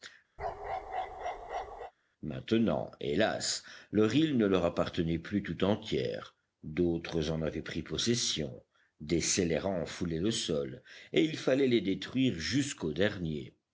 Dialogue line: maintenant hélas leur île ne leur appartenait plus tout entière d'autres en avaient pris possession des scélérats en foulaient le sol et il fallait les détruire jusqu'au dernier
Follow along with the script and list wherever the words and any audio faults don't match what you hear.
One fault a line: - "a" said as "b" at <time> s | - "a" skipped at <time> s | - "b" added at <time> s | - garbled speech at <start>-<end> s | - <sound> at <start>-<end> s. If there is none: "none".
- bark at 0.4-1.9 s